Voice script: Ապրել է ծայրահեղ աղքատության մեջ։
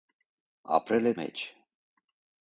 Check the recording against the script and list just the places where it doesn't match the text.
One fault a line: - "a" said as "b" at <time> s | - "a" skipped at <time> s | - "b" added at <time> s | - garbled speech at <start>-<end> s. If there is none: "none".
- "ծայրահեղ աղքատության" skipped at 1.1 s